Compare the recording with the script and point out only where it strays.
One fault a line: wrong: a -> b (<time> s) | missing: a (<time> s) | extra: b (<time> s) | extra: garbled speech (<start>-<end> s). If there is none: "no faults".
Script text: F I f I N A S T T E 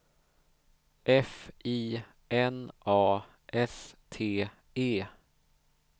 missing: f I (2.0 s)
missing: T (4.5 s)